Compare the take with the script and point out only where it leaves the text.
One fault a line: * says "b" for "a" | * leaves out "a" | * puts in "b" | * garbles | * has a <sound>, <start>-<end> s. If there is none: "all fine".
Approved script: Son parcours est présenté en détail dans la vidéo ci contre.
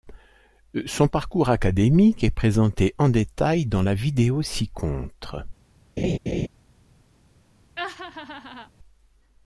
* puts in "académique"
* has a laugh, 6.0-6.5 s
* has a laugh, 7.8-8.7 s